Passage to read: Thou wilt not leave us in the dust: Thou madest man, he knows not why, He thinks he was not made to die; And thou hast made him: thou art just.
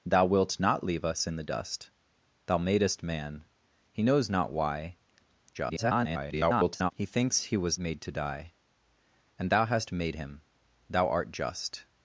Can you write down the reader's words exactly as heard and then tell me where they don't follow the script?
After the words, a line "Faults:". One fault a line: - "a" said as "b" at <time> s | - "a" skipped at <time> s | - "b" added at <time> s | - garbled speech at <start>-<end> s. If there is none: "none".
Thou wilt not leave us in the dust: Thou madest man, he knows not why, [garbled] He thinks he was made to die; And thou hast made him: thou art just.
Faults:
- garbled speech at 5.5-6.9 s
- "not" skipped at 7.8 s